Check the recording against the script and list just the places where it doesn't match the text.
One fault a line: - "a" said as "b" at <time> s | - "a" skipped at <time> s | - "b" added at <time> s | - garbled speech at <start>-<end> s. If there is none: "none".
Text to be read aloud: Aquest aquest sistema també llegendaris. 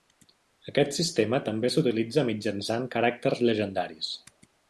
- "aquest" skipped at 0.9 s
- "s'utilitza mitjançant caràcters" added at 1.8 s